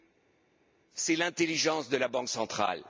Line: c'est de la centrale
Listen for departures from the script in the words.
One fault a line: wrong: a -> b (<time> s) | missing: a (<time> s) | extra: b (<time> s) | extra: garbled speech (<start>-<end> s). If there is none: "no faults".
extra: l'intelligence (1.2 s)
extra: banque (2.1 s)